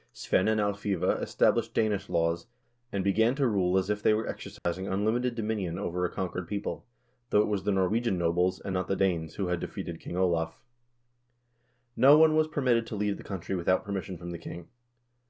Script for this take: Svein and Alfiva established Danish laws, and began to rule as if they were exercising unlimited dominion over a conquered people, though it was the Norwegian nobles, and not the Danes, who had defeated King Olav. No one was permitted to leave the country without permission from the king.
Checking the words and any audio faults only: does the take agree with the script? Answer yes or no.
no